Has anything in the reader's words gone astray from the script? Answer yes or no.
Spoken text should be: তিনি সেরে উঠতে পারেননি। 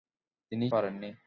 yes